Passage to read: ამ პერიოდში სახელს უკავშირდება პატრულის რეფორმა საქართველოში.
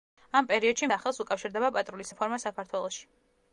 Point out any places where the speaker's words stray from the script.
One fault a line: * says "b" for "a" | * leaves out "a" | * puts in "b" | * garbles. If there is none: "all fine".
all fine